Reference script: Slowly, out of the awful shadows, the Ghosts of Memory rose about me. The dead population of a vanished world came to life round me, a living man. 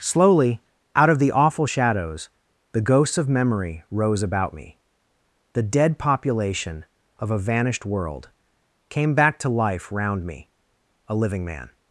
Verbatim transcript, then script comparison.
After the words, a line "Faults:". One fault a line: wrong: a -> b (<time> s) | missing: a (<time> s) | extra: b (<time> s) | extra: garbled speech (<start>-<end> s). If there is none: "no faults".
Slowly, out of the awful shadows, the Ghosts of Memory rose about me. The dead population of a vanished world came back to life round me, a living man.
Faults:
extra: back (9.1 s)